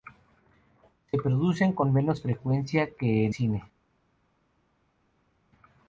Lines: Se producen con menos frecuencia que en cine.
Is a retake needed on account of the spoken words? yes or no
no